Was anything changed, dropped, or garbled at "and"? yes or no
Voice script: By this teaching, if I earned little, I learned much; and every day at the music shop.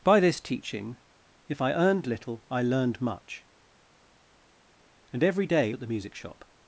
no